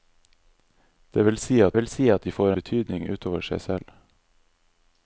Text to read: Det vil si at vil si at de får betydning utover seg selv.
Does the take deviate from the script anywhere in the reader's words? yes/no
no